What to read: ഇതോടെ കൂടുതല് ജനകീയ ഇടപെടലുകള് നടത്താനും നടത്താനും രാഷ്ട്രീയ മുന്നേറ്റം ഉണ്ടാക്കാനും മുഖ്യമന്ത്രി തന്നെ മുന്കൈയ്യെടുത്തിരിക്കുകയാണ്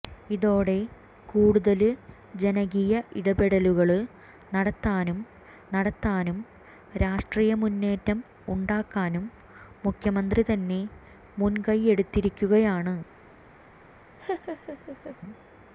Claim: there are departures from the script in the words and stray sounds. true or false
true